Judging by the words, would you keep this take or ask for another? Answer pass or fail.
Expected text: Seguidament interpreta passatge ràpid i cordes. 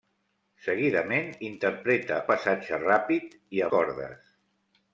pass